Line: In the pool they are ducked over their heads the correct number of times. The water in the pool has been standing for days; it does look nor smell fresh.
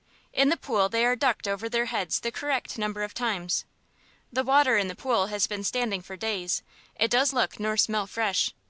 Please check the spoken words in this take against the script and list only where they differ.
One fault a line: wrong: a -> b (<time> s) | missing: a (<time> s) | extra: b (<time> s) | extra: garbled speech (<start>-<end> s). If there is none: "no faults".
no faults